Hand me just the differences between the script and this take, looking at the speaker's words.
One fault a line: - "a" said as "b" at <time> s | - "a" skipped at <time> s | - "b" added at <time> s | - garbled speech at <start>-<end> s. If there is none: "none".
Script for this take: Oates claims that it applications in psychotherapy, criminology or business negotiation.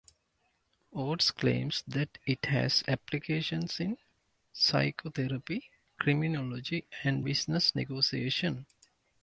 - "has" added at 2.5 s
- "or" said as "and" at 7.0 s